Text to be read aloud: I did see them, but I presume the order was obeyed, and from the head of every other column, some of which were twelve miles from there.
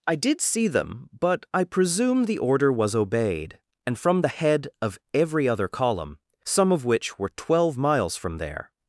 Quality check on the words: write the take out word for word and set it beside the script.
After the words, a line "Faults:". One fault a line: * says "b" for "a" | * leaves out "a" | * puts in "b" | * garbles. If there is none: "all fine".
I did see them, but I presume the order was obeyed, and from the head of every other column, some of which were twelve miles from there.
Faults:
all fine